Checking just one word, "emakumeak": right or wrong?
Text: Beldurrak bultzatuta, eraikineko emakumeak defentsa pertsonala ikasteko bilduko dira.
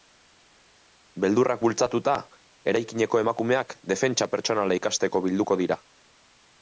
right